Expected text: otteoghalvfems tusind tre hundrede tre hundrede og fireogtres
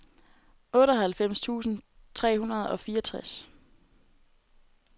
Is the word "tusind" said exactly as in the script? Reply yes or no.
yes